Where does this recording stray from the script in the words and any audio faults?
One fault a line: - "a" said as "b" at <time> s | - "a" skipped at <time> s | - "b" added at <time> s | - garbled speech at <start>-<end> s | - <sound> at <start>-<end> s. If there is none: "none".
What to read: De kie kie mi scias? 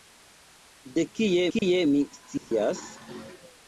- dropout at 1.6-1.6 s
- dropout at 2.4-2.5 s